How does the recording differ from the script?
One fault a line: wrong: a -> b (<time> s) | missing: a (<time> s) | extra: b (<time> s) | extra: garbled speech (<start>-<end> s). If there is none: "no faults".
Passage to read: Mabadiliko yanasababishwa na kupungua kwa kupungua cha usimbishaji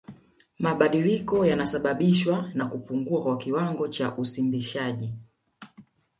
wrong: kupungua -> kiwango (3.4 s)